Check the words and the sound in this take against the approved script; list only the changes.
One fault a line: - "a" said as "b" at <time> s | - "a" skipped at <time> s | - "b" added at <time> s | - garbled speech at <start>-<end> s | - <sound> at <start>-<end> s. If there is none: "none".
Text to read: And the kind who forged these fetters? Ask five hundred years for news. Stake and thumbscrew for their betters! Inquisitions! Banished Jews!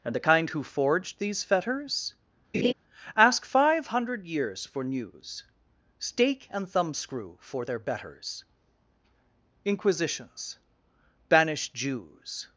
- laugh at 2.5-2.7 s